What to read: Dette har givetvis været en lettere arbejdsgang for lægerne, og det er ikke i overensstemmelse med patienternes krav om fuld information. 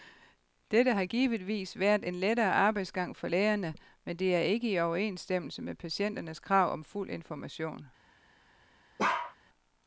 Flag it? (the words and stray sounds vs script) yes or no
yes